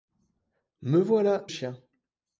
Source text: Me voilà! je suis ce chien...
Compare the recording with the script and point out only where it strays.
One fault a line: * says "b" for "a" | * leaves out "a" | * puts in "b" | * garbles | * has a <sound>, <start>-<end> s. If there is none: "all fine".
* leaves out "je suis ce"